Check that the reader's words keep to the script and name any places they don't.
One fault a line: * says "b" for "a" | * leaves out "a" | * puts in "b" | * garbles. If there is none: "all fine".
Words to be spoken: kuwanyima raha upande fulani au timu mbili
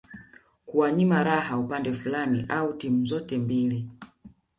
* puts in "zote"